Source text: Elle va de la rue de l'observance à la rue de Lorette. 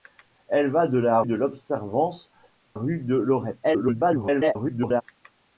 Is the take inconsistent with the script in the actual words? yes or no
yes